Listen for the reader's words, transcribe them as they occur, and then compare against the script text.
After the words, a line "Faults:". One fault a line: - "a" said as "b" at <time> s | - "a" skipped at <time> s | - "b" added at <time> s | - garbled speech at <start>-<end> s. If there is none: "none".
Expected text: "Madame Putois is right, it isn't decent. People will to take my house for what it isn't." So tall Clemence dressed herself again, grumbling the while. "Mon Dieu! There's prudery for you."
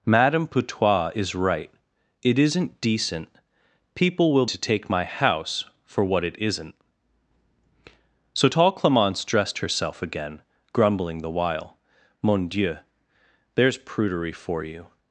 "Madame Putois is right, it isn't decent. People will to take my house for what it isn't." So tall Clemence dressed herself again, grumbling the while. "Mon Dieu! There's prudery for you."
Faults:
none